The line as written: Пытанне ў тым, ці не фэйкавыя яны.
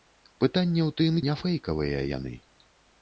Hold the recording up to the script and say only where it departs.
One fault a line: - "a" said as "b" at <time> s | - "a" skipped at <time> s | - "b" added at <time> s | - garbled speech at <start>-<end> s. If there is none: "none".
- "ці" skipped at 1.2 s